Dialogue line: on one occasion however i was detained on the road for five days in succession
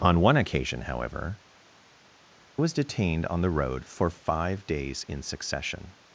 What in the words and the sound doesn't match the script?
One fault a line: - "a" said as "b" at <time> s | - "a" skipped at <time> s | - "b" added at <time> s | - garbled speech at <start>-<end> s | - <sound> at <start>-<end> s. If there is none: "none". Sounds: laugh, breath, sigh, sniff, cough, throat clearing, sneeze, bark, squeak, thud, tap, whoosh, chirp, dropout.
- "i" skipped at 1.4 s